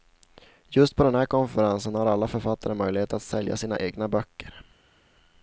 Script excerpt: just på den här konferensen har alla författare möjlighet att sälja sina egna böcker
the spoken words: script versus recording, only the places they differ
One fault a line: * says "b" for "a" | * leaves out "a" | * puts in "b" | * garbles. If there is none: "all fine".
all fine